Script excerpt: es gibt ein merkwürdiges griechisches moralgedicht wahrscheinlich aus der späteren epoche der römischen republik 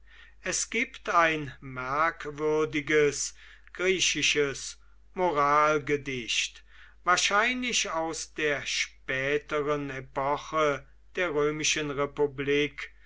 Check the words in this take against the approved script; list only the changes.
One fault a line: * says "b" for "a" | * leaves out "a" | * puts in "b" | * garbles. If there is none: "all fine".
all fine